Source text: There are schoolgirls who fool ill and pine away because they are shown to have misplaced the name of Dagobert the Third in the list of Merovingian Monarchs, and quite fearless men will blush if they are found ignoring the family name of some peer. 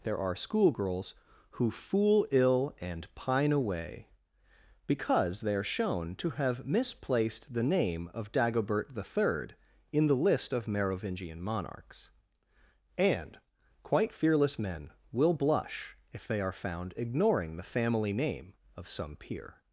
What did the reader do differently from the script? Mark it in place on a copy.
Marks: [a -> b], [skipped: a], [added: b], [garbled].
There are schoolgirls who fool ill and pine away because they are shown to have misplaced the name of Dagobert the Third in the list of Merovingian Monarchs, and quite fearless men will blush if they are found ignoring the family name of some peer.